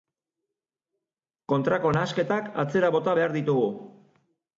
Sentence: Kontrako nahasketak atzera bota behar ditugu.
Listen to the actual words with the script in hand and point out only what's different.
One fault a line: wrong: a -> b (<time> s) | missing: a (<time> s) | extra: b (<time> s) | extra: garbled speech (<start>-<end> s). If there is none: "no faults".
no faults